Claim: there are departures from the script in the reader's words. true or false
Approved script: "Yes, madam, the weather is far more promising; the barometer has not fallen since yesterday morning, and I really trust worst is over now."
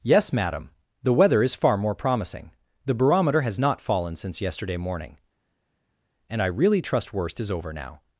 false